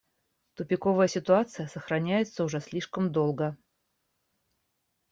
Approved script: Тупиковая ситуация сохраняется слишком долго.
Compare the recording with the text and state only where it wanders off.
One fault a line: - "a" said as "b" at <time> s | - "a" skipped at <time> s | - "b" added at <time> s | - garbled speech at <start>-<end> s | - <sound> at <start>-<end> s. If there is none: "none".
- "уже" added at 2.4 s